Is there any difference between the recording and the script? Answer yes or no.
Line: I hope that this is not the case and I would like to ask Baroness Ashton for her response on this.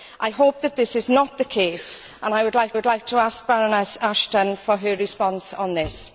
yes